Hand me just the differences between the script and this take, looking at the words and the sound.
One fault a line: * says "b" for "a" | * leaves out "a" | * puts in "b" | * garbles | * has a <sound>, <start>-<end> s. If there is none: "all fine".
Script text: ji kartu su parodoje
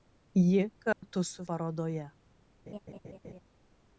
* has a dropout, 0.9-1.0 s
* has a laugh, 2.7-3.4 s